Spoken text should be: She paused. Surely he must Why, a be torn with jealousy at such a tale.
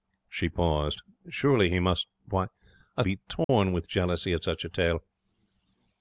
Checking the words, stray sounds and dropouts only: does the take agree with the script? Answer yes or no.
no